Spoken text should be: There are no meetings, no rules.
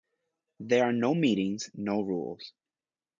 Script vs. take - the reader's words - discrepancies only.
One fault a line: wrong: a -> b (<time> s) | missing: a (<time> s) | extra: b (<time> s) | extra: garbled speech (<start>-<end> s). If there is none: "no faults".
no faults